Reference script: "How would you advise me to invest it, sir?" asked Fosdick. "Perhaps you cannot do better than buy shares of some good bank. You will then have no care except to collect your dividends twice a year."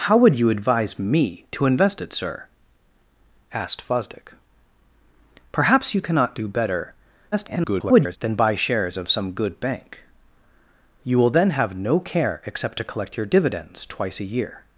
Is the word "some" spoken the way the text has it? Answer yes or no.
yes